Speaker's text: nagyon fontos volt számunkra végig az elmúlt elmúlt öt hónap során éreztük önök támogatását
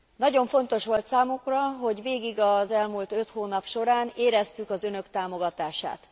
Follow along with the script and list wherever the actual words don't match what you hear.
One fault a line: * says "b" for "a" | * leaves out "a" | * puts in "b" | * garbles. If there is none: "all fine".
* puts in "hogy"
* leaves out "elmúlt"
* puts in "az"